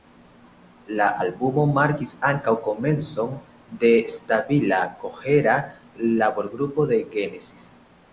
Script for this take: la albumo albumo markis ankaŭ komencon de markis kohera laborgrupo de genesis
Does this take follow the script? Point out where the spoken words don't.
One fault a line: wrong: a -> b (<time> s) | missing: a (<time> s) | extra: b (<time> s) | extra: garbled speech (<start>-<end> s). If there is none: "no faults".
missing: albumo (1.6 s)
wrong: markis -> stabila (4.1 s)